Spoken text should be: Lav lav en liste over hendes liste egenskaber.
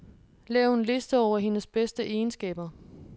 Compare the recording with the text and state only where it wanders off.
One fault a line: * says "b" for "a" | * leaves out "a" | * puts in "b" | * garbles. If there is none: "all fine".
* leaves out "lav"
* says "bedste" for "liste"